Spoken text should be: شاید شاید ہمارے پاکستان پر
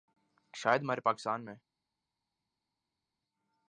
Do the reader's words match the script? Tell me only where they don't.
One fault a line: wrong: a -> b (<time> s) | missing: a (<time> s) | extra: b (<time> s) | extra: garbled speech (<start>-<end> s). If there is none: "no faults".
missing: شاید (0.8 s)
wrong: پر -> میں (1.4 s)